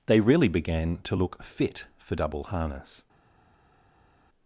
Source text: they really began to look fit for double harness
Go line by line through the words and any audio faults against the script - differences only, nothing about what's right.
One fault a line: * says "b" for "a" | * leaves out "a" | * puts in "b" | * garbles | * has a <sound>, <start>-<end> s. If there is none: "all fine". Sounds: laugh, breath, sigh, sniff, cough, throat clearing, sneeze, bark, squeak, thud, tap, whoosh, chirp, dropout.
all fine